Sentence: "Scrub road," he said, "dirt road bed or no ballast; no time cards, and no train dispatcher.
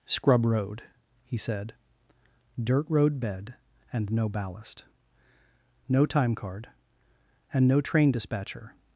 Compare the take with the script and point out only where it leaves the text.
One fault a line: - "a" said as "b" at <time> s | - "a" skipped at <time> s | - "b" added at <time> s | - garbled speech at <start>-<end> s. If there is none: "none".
- "or" said as "and" at 3.9 s
- "cards" said as "card" at 6.4 s